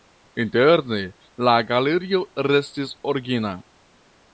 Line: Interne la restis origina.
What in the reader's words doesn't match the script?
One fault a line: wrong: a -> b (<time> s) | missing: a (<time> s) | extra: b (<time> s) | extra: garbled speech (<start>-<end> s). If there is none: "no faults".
extra: galerio (1.7 s)